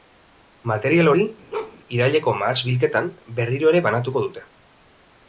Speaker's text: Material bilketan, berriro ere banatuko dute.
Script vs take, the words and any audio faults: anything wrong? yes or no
yes